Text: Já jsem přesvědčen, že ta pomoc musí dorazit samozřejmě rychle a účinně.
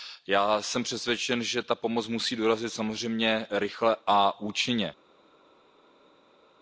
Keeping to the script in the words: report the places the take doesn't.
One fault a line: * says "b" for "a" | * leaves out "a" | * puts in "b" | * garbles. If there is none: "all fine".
all fine